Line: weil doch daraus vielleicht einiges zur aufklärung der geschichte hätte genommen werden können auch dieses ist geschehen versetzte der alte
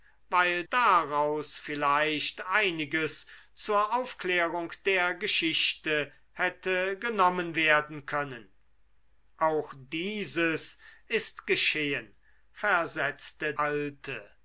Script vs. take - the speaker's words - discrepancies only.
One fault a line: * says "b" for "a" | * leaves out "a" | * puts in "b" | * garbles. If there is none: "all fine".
* leaves out "doch"
* leaves out "der"